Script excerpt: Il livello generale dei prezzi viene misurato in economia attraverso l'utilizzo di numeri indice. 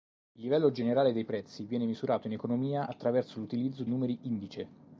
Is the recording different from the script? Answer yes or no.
yes